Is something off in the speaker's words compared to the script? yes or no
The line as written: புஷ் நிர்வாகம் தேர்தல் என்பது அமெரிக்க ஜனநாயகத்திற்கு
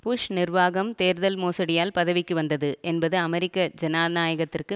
yes